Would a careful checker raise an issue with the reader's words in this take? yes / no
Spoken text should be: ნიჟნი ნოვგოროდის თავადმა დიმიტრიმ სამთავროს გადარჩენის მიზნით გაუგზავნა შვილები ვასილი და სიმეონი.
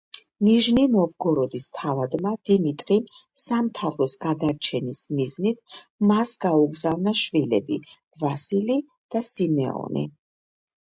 yes